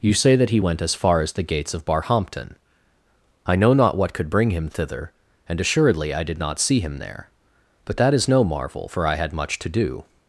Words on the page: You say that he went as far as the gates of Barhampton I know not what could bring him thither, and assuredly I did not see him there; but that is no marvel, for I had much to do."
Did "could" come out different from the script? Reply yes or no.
no